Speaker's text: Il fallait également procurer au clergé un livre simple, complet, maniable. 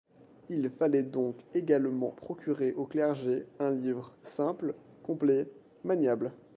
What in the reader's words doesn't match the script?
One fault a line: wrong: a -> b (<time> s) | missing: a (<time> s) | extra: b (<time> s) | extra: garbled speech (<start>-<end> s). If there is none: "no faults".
extra: donc (1.0 s)